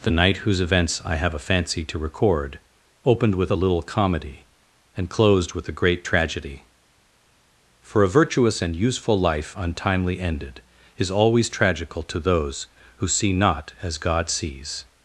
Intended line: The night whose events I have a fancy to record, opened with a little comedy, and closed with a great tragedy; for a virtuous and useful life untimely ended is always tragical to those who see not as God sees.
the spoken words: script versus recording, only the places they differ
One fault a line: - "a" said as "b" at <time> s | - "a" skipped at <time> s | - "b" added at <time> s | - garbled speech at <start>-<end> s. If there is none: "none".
none